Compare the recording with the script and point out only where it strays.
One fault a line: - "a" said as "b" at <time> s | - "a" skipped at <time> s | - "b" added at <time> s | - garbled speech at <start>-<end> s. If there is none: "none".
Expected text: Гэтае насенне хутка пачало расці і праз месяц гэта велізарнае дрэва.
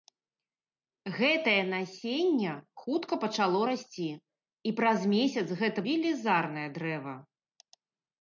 none